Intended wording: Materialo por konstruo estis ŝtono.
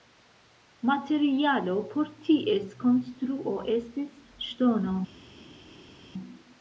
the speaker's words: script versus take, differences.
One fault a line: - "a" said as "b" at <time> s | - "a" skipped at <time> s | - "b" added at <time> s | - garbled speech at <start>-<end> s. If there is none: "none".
- "ties" added at 2.3 s